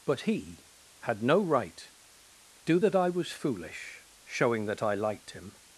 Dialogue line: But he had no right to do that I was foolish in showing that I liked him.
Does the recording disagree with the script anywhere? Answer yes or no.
yes